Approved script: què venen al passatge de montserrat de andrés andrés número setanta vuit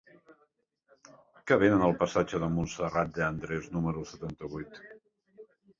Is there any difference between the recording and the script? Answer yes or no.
yes